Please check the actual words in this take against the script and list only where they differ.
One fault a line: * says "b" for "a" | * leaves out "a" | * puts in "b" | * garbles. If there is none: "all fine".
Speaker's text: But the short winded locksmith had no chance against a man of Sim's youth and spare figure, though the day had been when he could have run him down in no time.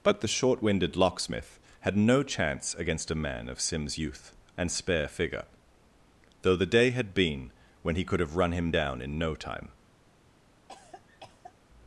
all fine